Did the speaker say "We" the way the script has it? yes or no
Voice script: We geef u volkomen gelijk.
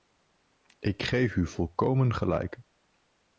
no